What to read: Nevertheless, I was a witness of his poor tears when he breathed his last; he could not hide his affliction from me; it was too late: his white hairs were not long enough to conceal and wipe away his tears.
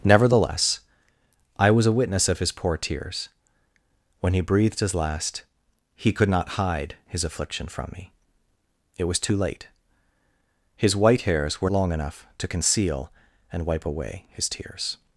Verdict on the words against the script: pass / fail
fail